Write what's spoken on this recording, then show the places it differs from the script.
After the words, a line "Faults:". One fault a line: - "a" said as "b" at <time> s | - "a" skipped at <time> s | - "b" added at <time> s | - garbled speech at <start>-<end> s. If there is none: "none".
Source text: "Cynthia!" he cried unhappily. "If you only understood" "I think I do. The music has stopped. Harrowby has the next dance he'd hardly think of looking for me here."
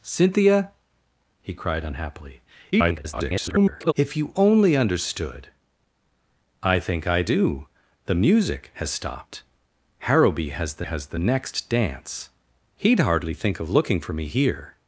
"Cynthia!" he cried unhappily. [garbled] "If you only understood" "I think I do. The music has stopped. Harrowby has the has the next dance he'd hardly think of looking for me here."
Faults:
- garbled speech at 2.7-3.9 s
- "has the" added at 10.8 s